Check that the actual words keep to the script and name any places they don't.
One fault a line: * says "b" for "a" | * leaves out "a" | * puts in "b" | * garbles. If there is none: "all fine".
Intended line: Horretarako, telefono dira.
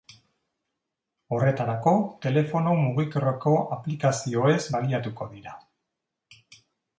* puts in "mugikorreko aplikazioez baliatuko"